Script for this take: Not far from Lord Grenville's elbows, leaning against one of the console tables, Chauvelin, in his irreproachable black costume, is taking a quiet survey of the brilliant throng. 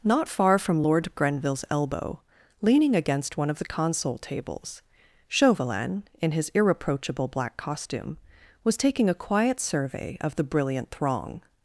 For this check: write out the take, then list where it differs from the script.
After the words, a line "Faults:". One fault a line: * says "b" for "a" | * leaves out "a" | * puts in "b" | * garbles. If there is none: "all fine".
Not far from Lord Grenville's elbow, leaning against one of the console tables, Chauvelin, in his irreproachable black costume, was taking a quiet survey of the brilliant throng.
Faults:
* says "elbow" for "elbows"
* says "was" for "is"